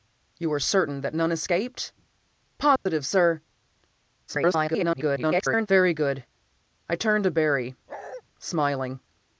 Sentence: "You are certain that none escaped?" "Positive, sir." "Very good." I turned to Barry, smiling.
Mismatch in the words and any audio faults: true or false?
true